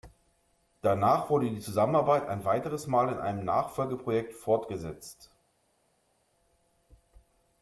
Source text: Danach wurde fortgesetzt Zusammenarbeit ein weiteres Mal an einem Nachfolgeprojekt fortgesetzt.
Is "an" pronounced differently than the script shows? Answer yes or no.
yes